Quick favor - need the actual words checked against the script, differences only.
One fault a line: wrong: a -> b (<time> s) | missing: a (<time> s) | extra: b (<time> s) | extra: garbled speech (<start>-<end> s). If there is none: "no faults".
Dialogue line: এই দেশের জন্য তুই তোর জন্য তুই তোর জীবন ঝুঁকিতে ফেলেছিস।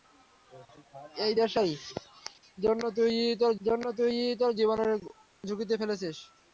no faults